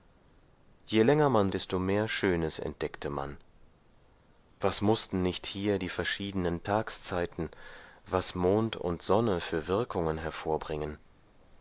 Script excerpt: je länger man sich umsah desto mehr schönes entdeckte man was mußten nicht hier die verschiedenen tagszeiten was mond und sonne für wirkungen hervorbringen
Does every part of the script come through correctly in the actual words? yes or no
no